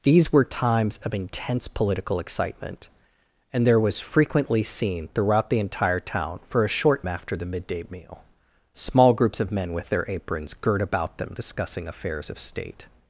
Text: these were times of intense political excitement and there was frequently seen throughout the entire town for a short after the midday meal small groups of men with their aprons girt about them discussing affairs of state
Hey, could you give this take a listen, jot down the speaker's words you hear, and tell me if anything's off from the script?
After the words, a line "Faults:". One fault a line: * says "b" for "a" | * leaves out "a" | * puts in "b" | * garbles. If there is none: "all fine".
these were times of intense political excitement and there was frequently seen throughout the entire town for a short after the midday meal small groups of men with their aprons girt about them discussing affairs of state
Faults:
all fine